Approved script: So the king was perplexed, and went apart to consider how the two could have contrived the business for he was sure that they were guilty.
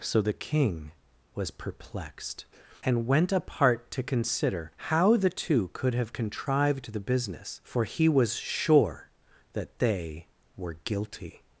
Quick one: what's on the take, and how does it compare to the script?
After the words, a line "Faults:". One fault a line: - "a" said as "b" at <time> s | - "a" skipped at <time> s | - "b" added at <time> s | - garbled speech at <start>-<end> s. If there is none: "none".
So the king was perplexed, and went apart to consider how the two could have contrived the business for he was sure that they were guilty.
Faults:
none